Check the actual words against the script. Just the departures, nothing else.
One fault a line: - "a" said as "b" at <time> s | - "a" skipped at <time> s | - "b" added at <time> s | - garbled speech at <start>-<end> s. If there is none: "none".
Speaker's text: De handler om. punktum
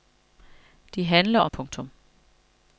none